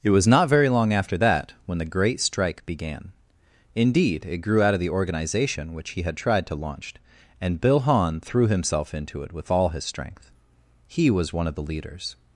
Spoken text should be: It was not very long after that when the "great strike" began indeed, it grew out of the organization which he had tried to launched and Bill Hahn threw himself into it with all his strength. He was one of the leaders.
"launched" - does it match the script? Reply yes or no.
no